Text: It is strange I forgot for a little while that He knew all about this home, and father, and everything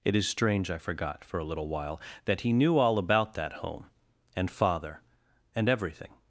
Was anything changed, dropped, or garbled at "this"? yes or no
yes